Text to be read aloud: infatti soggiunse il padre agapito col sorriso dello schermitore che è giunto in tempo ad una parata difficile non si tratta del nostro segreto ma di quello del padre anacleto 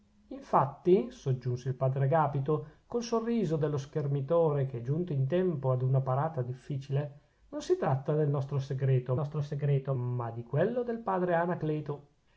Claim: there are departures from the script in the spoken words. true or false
true